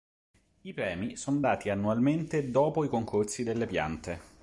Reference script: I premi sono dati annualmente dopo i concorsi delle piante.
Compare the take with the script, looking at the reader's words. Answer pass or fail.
pass